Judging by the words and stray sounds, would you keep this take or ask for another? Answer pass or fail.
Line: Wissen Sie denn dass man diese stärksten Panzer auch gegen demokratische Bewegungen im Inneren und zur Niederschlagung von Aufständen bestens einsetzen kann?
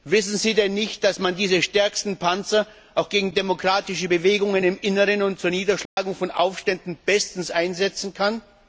fail